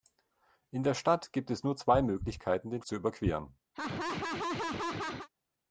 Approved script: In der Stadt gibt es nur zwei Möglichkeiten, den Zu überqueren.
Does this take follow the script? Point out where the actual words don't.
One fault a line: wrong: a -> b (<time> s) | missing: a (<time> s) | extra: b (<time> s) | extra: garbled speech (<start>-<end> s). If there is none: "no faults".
no faults